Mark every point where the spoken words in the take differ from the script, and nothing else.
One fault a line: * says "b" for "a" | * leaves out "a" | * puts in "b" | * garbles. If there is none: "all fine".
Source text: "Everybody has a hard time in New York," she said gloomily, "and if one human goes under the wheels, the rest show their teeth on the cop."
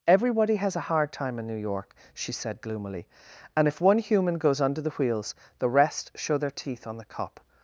all fine